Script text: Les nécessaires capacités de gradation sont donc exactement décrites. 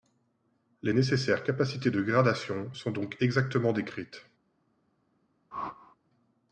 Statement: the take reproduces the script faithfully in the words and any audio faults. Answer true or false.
false